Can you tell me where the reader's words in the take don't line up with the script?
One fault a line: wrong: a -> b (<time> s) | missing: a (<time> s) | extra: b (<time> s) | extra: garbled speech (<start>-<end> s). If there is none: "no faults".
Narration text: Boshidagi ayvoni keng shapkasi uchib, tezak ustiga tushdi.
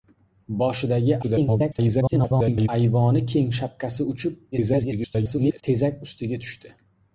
extra: garbled speech (1.2-2.7 s)
extra: garbled speech (4.5-5.6 s)